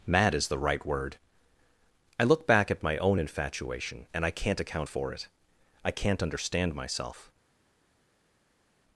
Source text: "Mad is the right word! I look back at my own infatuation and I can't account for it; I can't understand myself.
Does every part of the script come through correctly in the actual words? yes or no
yes